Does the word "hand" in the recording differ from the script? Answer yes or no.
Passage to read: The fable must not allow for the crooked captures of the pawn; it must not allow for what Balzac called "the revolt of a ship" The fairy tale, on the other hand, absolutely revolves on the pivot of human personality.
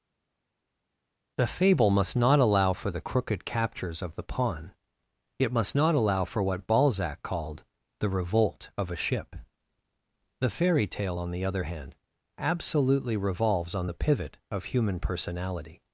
no